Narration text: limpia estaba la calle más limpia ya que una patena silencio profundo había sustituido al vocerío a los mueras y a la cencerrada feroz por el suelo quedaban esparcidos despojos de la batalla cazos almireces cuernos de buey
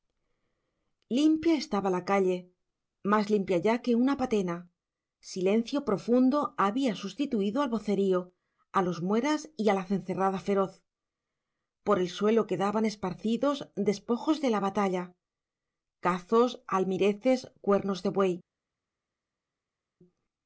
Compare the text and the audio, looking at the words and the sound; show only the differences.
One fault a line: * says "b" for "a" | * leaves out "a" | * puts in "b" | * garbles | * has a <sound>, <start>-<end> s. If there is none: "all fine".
all fine